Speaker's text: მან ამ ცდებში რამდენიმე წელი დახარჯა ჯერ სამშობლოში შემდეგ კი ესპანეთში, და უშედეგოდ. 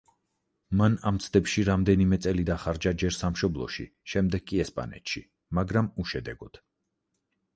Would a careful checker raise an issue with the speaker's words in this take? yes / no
yes